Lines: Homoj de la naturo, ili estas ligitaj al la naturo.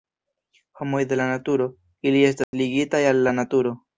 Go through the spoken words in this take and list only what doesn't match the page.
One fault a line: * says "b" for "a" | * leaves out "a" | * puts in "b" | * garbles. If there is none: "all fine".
all fine